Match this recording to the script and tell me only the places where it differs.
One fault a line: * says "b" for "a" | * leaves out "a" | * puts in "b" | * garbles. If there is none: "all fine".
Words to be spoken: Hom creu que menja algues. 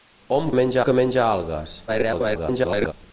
* says "menja" for "creu"
* garbles